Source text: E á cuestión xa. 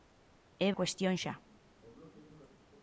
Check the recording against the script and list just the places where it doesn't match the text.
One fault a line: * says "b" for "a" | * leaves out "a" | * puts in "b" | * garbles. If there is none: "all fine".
all fine